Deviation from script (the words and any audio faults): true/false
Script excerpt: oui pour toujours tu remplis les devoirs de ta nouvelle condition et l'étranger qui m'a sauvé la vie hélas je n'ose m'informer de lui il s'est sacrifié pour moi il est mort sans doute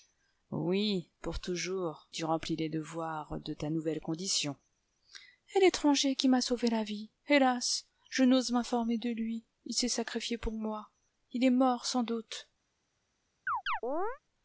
true